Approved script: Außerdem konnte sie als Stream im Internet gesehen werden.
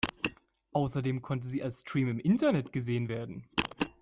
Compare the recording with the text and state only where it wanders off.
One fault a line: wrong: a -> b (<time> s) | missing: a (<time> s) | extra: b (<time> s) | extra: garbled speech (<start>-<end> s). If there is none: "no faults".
no faults